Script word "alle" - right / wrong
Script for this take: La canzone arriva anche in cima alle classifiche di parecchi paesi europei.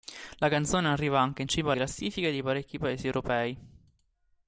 wrong